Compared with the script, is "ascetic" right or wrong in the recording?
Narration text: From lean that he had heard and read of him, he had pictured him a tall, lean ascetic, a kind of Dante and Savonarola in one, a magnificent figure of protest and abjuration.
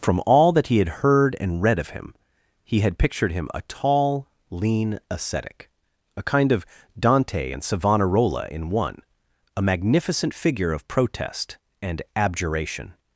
right